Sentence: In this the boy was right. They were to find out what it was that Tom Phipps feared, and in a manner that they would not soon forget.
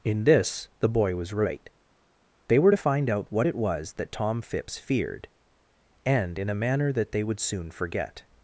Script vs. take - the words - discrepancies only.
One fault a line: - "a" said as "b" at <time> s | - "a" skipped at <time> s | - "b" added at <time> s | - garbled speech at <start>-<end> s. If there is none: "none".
- "not" skipped at 7.4 s